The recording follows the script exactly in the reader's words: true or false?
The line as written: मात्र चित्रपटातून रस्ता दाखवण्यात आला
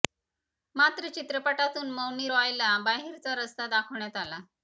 false